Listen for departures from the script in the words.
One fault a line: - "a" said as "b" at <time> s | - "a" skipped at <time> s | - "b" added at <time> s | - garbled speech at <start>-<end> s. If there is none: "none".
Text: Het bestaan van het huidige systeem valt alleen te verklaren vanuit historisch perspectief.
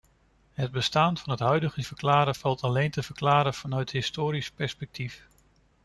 - "systeem" said as "verklaren" at 1.8 s